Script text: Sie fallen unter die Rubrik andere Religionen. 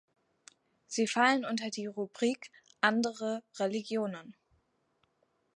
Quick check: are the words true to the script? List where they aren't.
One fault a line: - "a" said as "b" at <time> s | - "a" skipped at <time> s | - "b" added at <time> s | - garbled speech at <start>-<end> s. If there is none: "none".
none